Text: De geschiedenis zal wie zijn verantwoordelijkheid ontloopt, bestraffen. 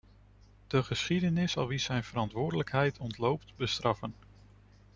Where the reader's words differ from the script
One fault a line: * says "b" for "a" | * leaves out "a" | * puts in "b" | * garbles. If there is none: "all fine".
all fine